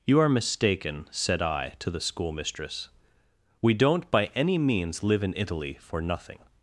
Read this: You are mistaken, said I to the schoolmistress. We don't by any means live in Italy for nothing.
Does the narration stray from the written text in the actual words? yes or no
no